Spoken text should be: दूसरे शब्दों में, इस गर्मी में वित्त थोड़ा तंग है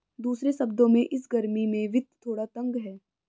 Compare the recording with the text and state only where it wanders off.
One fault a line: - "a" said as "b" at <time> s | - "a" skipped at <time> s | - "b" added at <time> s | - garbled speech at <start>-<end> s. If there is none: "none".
none